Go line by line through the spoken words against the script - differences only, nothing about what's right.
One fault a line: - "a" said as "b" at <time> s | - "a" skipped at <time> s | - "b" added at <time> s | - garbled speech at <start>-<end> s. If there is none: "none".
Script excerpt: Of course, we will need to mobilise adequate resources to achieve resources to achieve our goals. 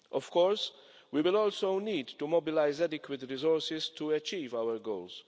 - "also" added at 1.4 s
- "resources to achieve" skipped at 4.5 s